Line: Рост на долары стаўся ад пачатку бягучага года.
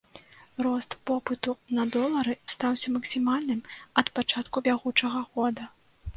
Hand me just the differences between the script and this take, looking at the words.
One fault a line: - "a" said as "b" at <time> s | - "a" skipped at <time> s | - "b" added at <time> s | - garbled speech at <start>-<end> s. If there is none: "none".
- "попыту" added at 1.1 s
- "максімальным" added at 3.0 s